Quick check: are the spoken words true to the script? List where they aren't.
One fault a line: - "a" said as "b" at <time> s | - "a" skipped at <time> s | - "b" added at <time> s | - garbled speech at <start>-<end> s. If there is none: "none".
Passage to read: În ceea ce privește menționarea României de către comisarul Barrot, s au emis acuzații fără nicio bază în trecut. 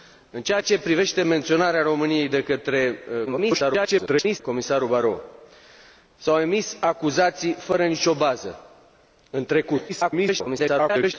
- garbled speech at 3.3-4.4 s
- garbled speech at 9.9-11.1 s